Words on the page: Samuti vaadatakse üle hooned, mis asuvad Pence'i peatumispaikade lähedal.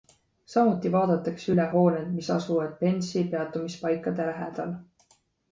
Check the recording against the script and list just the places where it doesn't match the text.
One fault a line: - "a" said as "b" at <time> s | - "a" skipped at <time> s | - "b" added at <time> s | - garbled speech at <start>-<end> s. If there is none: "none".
none